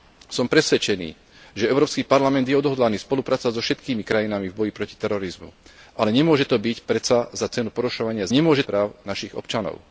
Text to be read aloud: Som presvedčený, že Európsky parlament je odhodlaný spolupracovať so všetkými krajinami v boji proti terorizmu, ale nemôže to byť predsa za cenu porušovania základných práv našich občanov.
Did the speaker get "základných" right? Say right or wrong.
wrong